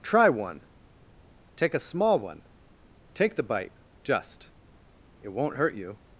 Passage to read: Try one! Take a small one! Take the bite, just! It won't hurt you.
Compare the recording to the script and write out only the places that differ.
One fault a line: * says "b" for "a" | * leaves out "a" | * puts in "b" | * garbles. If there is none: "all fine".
all fine